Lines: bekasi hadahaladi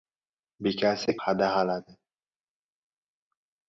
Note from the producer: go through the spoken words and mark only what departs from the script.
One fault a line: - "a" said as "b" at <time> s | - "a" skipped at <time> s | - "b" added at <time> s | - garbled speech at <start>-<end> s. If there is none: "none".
none